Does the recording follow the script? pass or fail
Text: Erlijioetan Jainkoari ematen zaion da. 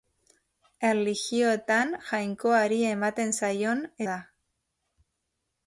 pass